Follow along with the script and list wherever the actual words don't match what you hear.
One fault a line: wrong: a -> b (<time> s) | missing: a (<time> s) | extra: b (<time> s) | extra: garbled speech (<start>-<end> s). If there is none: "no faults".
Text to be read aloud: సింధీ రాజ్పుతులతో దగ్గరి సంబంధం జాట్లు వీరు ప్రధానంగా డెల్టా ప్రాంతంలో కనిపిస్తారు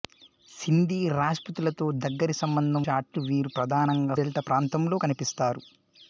no faults